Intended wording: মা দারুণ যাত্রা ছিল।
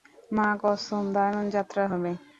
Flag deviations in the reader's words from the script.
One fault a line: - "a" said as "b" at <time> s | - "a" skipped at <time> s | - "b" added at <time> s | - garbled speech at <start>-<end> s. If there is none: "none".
- "কসম" added at 0.6 s
- "ছিল" said as "হবে" at 1.9 s